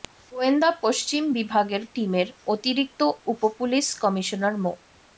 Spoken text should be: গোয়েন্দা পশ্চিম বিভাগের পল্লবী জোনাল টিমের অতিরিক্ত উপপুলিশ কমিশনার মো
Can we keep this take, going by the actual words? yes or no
no